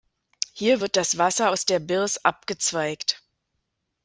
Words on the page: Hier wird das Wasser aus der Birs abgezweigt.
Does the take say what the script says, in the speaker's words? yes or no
yes